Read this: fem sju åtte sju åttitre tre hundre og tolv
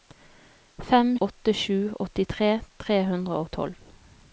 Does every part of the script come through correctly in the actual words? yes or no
no